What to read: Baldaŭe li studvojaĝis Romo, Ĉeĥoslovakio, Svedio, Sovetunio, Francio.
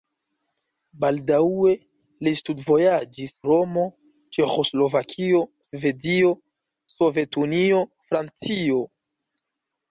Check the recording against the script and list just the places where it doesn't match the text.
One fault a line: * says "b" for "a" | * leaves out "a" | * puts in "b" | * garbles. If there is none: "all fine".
all fine